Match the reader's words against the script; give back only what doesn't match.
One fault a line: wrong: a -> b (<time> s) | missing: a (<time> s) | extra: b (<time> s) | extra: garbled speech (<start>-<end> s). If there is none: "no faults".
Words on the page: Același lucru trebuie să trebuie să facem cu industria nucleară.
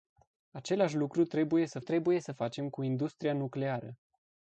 no faults